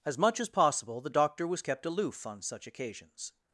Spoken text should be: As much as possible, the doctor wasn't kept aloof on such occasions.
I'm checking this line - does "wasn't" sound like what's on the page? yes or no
no